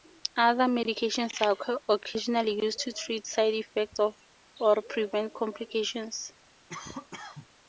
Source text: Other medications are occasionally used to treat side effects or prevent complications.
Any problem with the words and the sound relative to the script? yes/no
yes